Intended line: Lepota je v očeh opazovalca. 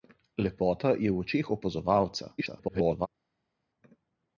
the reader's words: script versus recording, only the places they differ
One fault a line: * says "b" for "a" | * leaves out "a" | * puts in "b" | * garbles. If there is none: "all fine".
* garbles